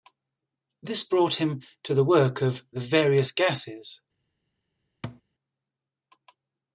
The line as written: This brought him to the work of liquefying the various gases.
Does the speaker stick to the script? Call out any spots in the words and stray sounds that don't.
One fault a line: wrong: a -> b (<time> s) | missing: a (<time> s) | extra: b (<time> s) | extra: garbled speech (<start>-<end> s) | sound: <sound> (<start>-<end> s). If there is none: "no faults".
missing: liquefying (2.6 s)
sound: thud (5.0-5.2 s)